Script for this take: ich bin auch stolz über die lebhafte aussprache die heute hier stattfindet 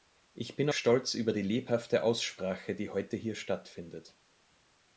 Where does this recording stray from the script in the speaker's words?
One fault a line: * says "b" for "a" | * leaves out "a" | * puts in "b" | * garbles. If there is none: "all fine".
* leaves out "auch"